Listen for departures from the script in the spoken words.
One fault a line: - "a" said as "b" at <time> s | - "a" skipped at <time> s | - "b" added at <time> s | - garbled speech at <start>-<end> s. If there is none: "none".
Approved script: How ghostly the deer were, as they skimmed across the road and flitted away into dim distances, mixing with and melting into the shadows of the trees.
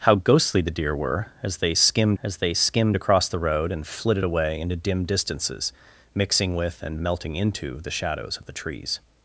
- "as they skimmed" added at 2.2 s